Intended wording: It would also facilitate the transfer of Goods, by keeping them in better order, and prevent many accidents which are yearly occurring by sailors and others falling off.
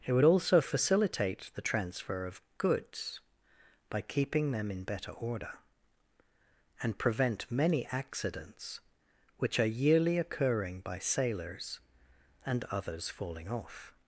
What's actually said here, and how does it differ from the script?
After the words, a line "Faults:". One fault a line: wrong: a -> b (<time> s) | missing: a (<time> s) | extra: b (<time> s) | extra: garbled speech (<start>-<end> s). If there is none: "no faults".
It would also facilitate the transfer of Goods, by keeping them in better order, and prevent many accidents which are yearly occurring by sailors and others falling off.
Faults:
no faults